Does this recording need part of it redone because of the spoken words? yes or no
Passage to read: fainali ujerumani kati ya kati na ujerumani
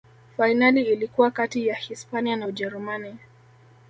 yes